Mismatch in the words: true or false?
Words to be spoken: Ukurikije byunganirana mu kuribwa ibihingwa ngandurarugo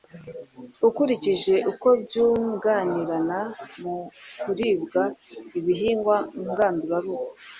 true